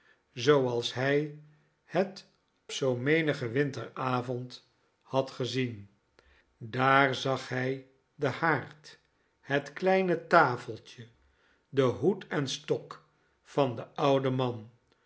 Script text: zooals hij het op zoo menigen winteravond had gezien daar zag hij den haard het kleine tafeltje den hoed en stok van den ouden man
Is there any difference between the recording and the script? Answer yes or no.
yes